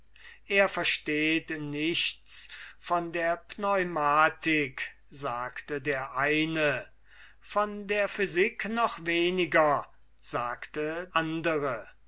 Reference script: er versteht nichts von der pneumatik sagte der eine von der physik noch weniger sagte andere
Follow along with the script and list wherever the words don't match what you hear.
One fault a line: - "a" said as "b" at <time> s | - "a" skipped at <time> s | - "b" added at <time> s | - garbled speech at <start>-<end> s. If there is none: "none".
none